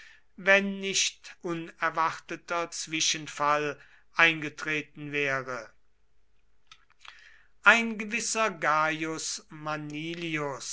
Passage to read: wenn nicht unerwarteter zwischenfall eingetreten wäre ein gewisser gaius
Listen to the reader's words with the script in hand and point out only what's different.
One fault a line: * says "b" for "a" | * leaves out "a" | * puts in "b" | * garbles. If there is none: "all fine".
all fine